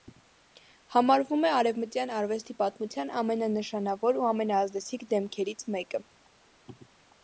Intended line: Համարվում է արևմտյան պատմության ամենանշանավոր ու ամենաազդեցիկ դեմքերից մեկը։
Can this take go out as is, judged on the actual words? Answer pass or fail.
fail